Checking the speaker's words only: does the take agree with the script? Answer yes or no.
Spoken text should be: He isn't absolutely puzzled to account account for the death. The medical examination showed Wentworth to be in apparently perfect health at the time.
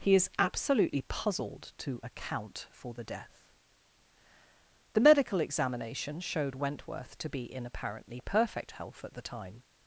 no